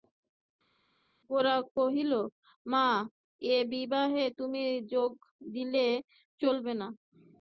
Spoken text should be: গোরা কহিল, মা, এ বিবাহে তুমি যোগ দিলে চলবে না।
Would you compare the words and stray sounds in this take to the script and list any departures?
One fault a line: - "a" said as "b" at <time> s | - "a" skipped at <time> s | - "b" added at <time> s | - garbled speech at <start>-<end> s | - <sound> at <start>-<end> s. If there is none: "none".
none